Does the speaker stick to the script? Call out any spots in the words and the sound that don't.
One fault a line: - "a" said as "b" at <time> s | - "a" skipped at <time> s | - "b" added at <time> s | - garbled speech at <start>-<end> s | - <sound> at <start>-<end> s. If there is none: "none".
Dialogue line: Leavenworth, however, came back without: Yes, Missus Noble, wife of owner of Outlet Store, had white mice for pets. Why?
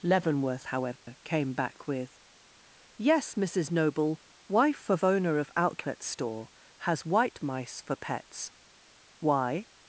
- dropout at 1.0-1.1 s
- "without" said as "with" at 1.9 s
- "had" said as "has" at 6.8 s